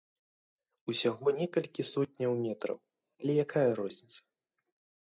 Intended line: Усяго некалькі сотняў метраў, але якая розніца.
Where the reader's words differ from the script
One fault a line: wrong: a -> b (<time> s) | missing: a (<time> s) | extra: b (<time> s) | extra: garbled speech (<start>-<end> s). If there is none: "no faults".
no faults